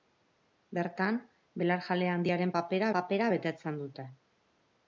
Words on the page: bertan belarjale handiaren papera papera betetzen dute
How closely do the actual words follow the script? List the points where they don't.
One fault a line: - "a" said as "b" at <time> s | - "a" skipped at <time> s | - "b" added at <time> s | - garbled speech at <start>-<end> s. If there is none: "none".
none